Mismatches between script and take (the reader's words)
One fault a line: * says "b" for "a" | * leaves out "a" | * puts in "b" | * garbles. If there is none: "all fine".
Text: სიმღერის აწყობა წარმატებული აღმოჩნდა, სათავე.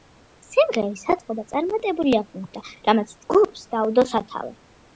* puts in "რამაც ჯგუფს დაუდო"